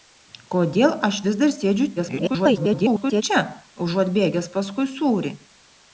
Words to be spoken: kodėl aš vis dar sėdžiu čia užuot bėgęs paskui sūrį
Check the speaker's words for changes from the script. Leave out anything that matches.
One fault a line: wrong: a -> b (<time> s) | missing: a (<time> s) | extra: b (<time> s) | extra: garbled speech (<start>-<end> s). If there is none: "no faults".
extra: garbled speech (2.0-3.2 s)